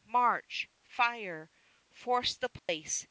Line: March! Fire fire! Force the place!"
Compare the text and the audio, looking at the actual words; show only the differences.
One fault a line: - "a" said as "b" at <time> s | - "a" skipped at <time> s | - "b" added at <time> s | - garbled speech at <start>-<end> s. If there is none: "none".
- "fire" skipped at 1.5 s